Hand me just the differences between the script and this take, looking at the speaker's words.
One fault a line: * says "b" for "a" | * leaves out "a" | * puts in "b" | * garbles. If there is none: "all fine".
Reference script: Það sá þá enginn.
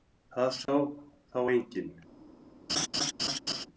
all fine